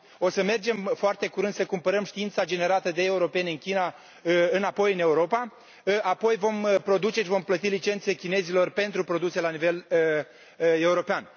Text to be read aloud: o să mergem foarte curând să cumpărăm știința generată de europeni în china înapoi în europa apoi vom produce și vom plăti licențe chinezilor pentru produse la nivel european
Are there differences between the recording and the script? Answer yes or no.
no